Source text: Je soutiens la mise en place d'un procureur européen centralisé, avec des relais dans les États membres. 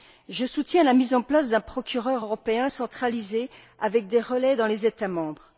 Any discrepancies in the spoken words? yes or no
no